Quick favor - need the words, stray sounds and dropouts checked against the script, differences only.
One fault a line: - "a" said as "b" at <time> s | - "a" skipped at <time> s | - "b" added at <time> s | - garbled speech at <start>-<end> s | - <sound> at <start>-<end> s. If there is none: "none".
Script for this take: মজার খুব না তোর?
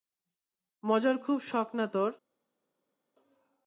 - "শখ" added at 1.4 s